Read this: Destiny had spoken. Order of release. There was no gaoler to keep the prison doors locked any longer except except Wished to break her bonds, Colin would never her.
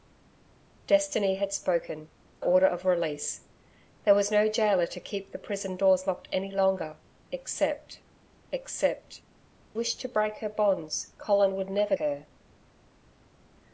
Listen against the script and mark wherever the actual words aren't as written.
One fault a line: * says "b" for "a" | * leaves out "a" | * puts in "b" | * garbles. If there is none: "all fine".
all fine